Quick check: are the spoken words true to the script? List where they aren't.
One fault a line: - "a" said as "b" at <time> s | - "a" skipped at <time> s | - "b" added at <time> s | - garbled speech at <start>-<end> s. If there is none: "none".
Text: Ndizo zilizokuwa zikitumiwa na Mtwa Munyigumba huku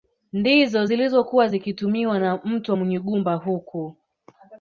none